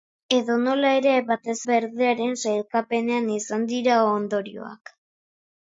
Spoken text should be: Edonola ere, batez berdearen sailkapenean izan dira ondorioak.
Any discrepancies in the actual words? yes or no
no